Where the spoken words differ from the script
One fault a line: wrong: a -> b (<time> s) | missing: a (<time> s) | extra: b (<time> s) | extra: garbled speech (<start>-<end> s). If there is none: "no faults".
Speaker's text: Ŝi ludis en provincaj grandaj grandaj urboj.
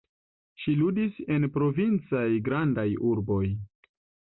missing: grandaj (2.9 s)